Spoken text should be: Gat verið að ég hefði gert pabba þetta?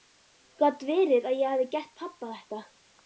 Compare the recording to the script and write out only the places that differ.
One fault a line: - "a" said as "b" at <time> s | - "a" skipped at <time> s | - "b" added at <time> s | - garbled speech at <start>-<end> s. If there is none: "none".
none